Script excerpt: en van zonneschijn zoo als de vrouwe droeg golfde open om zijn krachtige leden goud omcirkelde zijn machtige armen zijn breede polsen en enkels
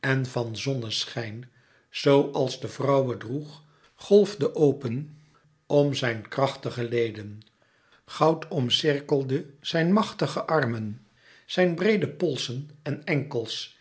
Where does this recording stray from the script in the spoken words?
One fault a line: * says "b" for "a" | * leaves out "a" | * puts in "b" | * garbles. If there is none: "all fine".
all fine